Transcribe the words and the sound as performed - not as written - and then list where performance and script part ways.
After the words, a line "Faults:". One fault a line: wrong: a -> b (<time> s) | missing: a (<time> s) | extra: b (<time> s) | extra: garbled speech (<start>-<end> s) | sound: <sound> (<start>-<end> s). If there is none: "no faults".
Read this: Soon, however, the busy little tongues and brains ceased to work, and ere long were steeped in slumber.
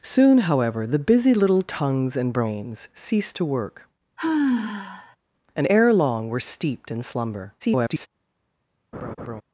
Soon, however, the busy little tongues and brains ceased to work, and ere long were steeped in slumber. [garbled]
Faults:
sound: sigh (4.2-5.2 s)
extra: garbled speech (7.6-8.1 s)
sound: laugh (8.9-9.4 s)